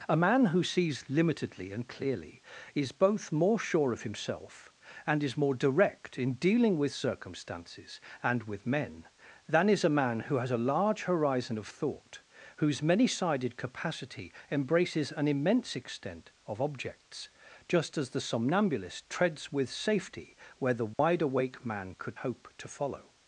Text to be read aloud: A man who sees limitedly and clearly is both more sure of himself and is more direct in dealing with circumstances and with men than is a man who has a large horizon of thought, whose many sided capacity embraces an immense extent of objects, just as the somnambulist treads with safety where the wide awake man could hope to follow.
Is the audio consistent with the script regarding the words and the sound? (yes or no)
no